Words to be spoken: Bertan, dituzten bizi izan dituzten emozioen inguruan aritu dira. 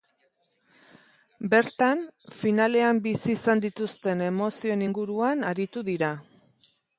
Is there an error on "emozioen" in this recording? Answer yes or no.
no